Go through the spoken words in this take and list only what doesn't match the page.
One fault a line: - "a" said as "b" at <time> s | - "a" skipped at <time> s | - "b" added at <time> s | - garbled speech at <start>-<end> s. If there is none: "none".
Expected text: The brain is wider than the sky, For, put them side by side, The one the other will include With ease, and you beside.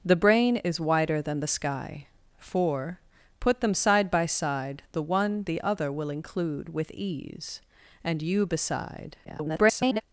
- garbled speech at 9.2-10.0 s